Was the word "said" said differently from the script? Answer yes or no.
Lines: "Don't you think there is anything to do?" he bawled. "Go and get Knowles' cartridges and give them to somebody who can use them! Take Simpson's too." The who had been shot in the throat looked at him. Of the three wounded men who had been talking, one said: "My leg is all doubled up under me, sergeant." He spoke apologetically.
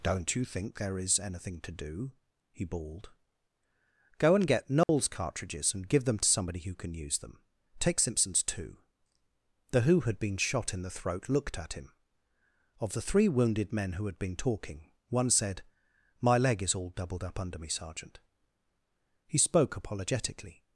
no